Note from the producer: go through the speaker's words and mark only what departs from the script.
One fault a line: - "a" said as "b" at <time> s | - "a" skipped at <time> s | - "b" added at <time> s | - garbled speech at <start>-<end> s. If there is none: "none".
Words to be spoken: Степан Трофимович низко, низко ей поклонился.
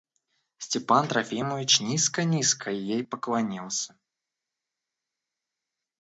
none